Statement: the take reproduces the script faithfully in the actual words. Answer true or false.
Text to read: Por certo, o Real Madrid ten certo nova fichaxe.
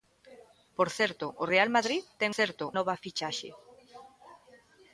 true